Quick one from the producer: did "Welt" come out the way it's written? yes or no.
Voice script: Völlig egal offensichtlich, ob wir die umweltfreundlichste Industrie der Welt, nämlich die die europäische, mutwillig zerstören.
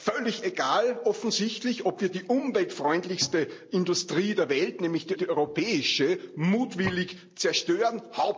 yes